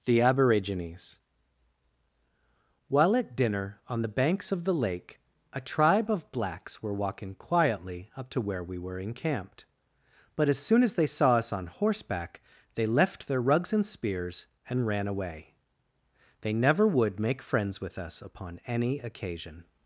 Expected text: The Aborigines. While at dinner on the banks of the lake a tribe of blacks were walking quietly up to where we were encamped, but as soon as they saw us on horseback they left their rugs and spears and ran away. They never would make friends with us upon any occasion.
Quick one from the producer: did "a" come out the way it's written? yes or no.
yes